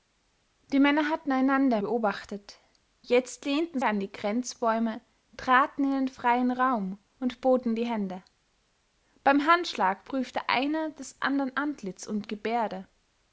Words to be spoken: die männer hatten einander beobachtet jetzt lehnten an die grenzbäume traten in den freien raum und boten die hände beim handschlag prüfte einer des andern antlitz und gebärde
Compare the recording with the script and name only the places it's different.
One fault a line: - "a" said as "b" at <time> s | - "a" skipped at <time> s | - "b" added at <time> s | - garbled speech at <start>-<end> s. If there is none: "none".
none